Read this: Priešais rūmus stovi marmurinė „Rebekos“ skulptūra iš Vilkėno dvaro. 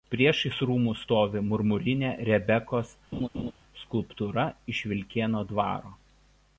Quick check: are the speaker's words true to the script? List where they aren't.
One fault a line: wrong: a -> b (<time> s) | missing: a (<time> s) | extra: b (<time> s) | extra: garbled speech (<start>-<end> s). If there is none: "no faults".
no faults